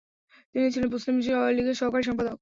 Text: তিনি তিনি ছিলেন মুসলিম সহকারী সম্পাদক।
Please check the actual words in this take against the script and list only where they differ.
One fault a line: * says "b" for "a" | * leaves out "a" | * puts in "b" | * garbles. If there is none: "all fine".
* leaves out "তিনি"
* puts in "লীগের"